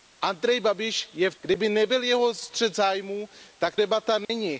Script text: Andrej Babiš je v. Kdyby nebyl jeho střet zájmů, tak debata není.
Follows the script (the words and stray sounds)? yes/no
no